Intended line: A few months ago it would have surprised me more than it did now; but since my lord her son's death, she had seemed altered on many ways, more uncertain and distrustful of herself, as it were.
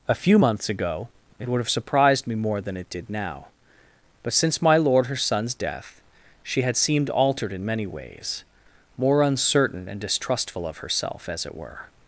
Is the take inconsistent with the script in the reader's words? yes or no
yes